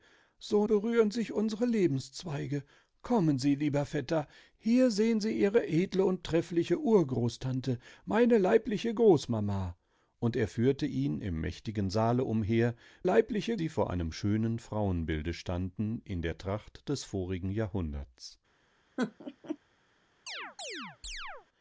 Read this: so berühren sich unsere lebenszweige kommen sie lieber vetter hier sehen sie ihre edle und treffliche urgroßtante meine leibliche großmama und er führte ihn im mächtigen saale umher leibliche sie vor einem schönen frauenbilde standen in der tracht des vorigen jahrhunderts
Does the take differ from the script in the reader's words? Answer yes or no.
no